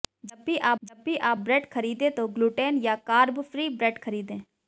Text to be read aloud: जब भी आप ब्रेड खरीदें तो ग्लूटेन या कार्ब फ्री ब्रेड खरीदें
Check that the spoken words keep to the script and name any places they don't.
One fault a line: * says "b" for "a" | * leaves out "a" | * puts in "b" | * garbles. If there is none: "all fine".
* puts in "जब भी आप"